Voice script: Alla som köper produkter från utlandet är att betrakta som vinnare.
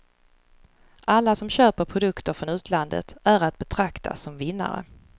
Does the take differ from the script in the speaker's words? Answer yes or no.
no